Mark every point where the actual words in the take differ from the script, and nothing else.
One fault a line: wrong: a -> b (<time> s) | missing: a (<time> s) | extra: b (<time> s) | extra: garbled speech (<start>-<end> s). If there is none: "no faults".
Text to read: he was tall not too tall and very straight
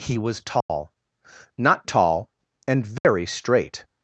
missing: too (1.9 s)